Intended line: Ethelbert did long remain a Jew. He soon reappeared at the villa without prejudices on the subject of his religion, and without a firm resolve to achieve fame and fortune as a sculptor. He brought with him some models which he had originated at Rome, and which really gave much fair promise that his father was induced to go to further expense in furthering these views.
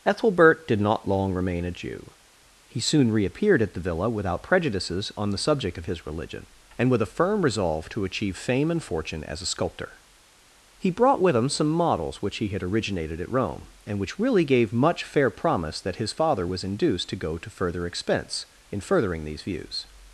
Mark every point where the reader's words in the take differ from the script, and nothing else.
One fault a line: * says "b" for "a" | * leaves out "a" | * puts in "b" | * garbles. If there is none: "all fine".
* puts in "not"
* says "with" for "without"